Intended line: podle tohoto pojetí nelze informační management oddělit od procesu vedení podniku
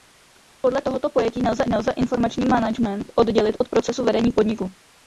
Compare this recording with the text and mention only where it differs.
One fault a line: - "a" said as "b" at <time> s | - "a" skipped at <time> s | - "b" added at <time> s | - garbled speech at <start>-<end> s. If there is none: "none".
- "nelze" added at 1.7 s